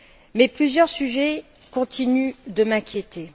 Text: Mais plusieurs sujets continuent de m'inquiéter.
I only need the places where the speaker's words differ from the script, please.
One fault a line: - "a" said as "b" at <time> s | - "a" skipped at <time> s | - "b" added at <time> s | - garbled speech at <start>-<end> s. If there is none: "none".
none